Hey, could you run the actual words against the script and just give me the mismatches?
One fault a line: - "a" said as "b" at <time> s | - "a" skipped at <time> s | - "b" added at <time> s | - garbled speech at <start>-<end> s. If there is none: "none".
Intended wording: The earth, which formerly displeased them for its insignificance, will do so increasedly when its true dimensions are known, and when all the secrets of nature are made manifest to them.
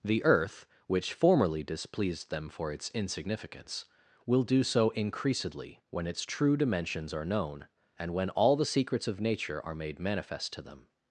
none